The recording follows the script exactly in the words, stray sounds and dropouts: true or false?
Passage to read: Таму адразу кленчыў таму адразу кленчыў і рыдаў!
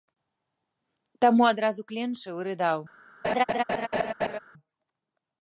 false